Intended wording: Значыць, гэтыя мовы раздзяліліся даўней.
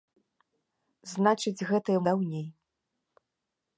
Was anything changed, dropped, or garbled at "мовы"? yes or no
yes